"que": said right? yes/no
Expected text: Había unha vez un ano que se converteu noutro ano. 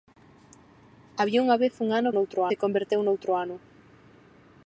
no